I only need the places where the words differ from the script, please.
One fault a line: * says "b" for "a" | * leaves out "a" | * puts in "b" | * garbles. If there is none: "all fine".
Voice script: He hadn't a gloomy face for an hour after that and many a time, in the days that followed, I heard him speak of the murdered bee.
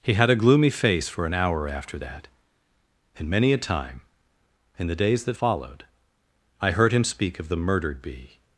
* says "had" for "hadn't"